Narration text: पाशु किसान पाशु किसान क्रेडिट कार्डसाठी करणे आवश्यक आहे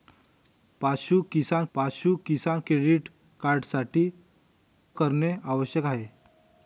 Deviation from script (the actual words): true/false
false